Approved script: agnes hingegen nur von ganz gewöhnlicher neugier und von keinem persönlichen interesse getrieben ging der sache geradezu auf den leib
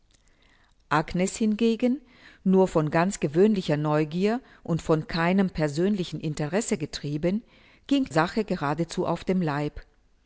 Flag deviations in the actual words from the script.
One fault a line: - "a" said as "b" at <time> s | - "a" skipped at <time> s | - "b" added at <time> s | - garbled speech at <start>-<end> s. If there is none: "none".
- "der" skipped at 8.1 s